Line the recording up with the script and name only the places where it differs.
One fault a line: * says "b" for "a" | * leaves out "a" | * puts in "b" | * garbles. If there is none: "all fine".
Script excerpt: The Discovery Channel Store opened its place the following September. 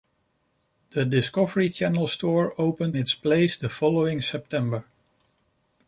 all fine